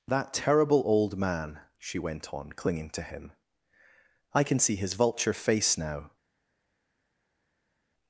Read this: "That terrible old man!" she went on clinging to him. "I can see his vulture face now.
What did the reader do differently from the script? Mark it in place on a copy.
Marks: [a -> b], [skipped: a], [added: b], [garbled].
"That terrible old man!" she went on clinging to him. "I can see his vulture face now.